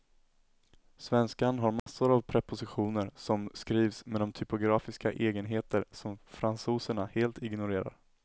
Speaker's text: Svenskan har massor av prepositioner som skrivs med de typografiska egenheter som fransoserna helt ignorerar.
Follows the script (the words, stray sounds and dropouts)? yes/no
no